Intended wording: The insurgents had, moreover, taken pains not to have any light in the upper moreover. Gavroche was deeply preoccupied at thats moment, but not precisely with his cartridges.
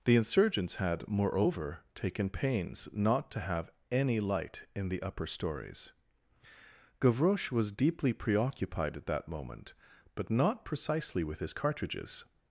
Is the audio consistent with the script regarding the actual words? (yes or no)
no